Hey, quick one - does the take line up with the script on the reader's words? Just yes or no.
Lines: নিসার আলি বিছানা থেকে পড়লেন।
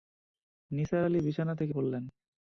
yes